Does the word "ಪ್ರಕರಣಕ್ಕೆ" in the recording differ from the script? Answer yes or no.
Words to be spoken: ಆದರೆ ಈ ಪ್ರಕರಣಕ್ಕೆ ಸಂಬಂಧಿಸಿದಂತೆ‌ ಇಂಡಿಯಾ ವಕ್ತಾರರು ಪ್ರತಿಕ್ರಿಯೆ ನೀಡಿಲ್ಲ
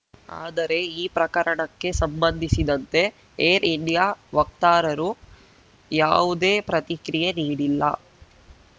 no